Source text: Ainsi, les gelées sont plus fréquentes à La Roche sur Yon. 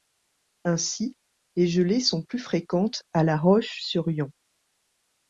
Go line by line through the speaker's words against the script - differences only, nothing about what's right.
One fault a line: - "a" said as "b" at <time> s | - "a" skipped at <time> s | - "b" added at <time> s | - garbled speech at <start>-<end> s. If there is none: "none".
none